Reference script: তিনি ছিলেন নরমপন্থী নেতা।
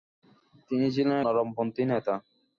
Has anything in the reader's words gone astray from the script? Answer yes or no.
no